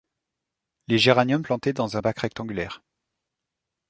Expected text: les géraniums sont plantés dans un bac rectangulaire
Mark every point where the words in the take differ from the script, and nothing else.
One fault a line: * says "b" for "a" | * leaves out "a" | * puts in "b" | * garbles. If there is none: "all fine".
* leaves out "sont"